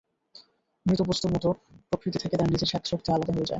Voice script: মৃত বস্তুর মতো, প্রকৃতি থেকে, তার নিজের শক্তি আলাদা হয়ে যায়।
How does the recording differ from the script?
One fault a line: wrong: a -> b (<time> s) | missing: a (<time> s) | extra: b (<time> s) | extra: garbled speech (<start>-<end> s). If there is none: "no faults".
no faults